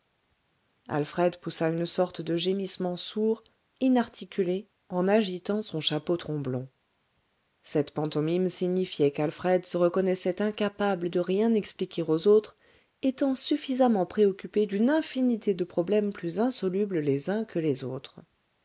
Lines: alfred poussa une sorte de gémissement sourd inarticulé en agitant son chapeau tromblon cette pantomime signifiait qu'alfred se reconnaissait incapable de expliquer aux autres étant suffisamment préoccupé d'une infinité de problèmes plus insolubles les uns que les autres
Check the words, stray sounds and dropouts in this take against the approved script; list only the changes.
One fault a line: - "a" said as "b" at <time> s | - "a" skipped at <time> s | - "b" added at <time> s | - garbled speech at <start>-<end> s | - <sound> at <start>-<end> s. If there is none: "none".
- "rien" added at 11.2 s